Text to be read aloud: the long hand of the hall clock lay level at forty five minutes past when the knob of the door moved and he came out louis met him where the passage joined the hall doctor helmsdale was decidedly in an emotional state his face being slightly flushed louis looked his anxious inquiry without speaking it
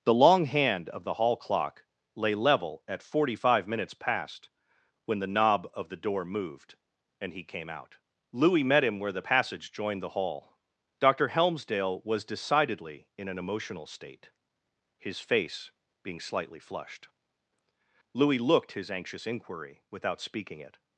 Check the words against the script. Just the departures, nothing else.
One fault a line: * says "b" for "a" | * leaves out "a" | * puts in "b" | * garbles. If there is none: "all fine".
all fine